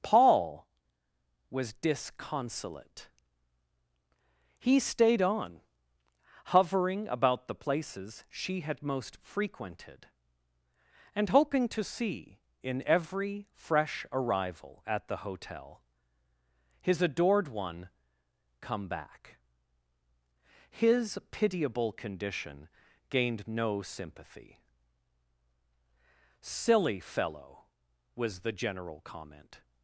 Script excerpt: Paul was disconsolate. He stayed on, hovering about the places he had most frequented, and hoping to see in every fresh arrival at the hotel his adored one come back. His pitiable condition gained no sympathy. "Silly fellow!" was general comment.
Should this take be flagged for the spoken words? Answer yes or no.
yes